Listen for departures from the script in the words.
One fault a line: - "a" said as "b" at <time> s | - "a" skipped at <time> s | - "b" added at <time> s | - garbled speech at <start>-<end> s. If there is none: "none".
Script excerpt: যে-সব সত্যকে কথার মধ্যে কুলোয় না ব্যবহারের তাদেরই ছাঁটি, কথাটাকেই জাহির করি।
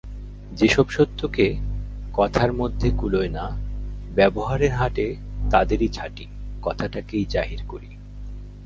- "হাটে" added at 4.7 s